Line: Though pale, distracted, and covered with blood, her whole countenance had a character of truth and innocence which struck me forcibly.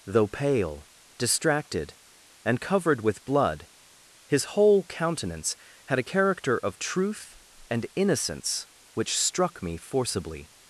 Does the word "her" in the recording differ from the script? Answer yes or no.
yes